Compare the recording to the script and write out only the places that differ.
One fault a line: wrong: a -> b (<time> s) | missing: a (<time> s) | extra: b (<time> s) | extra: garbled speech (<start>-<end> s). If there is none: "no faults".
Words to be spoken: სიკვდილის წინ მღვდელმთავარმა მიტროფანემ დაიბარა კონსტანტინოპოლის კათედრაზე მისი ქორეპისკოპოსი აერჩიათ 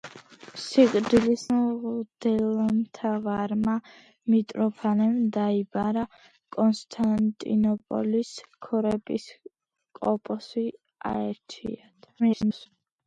missing: წინ (1.4 s)
missing: კათედრაზე მისი (8.3 s)
extra: garbled speech (12.2-12.7 s)